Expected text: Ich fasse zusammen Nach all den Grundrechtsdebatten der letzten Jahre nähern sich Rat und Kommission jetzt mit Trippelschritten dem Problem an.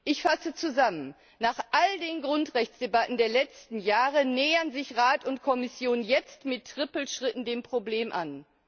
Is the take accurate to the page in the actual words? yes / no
yes